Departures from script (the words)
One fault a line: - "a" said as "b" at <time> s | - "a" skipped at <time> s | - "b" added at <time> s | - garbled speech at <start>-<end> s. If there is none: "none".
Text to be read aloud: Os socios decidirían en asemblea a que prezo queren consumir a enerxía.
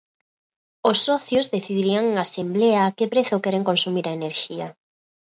none